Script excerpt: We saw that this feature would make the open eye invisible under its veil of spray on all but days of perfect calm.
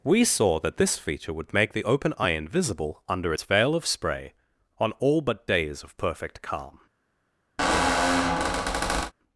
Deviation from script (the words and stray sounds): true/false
true